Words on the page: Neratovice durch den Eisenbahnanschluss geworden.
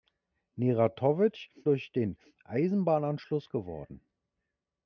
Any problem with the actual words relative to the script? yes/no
no